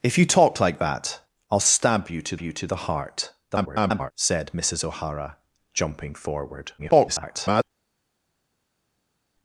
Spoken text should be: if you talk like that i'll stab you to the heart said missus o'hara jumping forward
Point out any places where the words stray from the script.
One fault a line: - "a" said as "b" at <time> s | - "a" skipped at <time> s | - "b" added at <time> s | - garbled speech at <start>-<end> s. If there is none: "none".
- "you to" added at 2.4 s
- garbled speech at 3.5-4.1 s
- garbled speech at 6.8-7.6 s